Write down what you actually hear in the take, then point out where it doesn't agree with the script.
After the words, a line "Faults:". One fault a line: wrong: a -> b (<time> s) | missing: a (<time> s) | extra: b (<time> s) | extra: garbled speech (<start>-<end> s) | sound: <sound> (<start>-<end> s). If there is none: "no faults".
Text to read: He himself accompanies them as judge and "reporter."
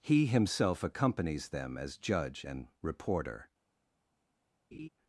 He himself accompanies them as judge and "reporter."
Faults:
sound: laugh (4.7-4.9 s)